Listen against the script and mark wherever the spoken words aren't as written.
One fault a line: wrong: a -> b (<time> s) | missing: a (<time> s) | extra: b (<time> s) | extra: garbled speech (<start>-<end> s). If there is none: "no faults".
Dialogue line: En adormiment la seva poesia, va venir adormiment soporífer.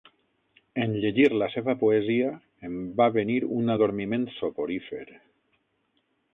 wrong: adormiment -> llegir (1.0 s)
extra: em (2.7 s)
extra: un (3.6 s)